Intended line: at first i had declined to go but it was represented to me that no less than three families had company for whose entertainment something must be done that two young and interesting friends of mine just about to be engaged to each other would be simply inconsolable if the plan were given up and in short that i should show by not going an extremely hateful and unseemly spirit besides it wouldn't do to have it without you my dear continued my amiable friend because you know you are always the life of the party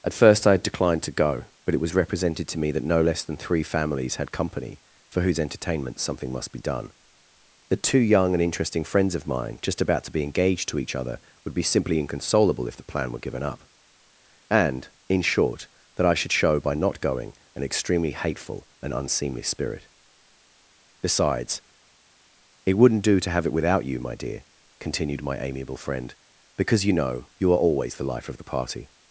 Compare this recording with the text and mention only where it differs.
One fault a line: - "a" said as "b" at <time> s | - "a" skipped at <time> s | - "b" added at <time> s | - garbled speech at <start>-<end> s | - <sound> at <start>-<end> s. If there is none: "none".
none